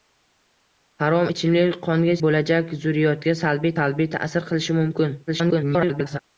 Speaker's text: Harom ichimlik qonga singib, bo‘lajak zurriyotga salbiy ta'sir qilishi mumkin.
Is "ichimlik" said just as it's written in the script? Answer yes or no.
yes